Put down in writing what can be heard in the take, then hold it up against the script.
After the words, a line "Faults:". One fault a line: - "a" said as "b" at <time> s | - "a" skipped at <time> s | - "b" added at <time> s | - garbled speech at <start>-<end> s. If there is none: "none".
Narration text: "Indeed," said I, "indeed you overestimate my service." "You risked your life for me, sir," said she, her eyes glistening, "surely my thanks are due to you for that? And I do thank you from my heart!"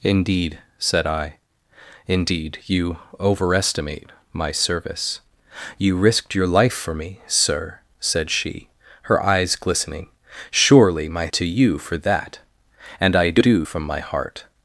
"Indeed," said I, "indeed you overestimate my service." "You risked your life for me, sir," said she, her eyes glistening, "surely my to you for that? And I do from my heart!"
Faults:
- "thanks are due" skipped at 11.3 s
- "thank you" skipped at 13.7 s